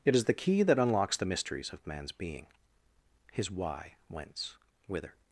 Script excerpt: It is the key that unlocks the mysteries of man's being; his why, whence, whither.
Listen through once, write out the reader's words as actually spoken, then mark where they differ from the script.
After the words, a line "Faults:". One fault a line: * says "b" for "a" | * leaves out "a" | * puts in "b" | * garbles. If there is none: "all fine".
It is the key that unlocks the mysteries of man's being; his why, whence, whither.
Faults:
all fine